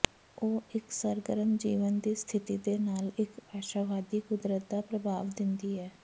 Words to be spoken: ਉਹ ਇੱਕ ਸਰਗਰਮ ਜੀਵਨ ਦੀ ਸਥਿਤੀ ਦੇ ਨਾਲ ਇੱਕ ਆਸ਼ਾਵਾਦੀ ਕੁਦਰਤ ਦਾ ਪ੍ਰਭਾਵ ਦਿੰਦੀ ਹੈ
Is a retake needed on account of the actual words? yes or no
no